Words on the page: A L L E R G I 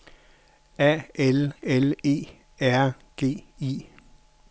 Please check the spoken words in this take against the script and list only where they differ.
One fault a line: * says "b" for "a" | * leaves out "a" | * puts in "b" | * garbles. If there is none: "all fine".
all fine